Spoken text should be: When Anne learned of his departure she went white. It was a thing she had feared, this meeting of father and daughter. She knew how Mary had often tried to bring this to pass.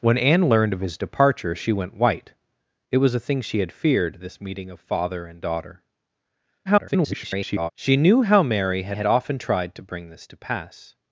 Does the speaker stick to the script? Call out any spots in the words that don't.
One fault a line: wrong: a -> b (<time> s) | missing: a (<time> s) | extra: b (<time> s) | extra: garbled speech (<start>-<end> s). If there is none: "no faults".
extra: garbled speech (6.7-7.7 s)
extra: had (8.9 s)